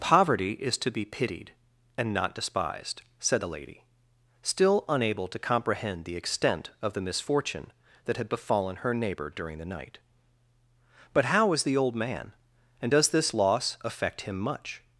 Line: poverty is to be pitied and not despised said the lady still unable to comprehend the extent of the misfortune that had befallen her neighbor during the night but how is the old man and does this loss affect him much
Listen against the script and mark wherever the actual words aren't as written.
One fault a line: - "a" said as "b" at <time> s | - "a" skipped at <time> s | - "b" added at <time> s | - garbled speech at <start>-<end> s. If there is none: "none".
none